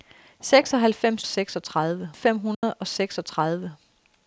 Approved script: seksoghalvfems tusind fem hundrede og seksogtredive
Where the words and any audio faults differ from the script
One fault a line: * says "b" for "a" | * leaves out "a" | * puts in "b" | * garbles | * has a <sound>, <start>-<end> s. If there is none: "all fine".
* says "seksogtredive" for "tusind"
* has a dropout, 2.5-2.6 s